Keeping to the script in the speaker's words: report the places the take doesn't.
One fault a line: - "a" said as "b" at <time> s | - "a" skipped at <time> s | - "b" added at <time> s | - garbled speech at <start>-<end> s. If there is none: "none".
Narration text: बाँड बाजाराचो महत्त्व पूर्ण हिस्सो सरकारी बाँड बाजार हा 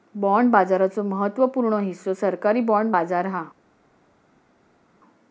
none